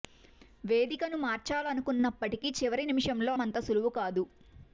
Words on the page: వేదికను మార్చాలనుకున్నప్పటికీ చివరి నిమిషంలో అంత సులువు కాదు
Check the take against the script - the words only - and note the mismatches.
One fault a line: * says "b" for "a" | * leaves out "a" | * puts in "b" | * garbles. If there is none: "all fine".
all fine